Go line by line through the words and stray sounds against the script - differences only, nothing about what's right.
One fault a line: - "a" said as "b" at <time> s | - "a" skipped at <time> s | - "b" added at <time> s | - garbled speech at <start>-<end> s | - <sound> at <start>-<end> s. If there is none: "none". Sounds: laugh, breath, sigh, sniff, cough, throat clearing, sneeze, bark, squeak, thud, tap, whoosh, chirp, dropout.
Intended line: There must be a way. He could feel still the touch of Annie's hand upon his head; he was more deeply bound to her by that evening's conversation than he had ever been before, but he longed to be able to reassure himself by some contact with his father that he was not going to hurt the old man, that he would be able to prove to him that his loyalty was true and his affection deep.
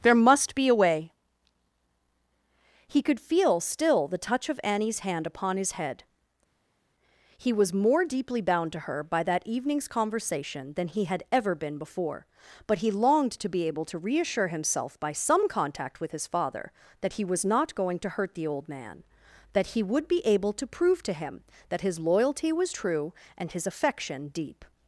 none